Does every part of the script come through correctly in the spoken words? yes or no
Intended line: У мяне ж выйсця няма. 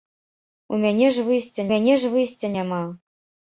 no